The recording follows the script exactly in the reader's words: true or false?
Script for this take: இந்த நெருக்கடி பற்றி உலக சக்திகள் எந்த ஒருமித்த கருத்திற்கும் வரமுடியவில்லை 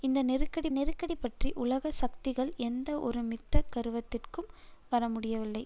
false